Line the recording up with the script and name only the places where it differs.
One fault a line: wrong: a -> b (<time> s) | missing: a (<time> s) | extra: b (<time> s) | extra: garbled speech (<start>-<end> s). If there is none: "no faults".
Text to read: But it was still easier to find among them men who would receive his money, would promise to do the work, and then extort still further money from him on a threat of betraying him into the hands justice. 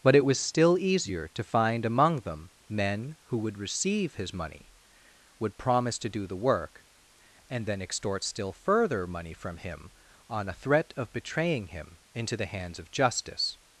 extra: of (12.8 s)